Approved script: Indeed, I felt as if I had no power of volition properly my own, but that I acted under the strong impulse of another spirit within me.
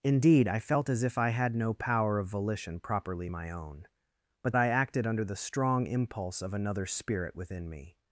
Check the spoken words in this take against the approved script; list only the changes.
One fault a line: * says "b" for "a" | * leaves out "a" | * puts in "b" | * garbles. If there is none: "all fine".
* leaves out "that"